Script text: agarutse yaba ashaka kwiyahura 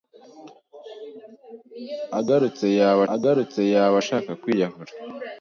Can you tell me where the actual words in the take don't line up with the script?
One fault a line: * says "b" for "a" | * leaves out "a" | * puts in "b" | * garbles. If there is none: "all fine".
* puts in "agarutse yaba"